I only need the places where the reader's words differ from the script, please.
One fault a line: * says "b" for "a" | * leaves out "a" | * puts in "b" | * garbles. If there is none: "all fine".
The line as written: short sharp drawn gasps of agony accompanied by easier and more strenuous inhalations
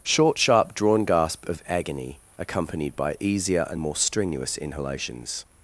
* says "gasp" for "gasps"